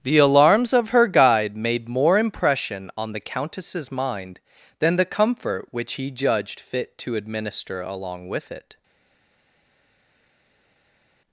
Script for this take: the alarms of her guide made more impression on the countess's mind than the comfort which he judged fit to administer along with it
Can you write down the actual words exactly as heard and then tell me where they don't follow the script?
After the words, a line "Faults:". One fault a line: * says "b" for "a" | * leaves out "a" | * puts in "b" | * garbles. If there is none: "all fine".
the alarms of her guide made more impression on the countess's mind than the comfort which he judged fit to administer along with it
Faults:
all fine